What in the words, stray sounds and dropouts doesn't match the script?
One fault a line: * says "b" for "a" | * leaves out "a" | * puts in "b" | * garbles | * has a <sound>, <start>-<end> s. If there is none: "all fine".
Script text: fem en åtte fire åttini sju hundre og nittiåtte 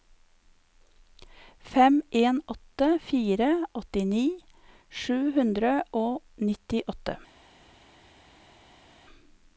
all fine